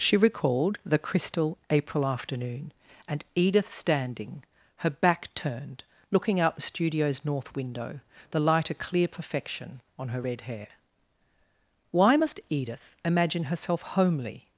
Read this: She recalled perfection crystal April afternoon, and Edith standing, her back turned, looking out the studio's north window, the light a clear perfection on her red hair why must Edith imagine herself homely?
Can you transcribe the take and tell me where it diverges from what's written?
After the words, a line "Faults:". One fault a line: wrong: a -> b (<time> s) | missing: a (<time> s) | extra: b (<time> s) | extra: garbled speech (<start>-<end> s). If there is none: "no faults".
She recalled the crystal April afternoon, and Edith standing, her back turned, looking out the studio's north window, the light a clear perfection on her red hair why must Edith imagine herself homely?
Faults:
wrong: perfection -> the (0.8 s)